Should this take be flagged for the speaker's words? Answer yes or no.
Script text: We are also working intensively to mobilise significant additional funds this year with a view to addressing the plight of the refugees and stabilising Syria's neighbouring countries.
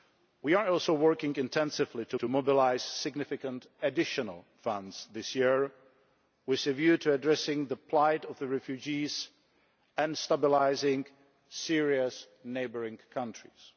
yes